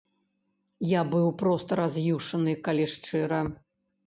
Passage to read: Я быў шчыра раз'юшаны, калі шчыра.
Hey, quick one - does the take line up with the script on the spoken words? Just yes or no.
no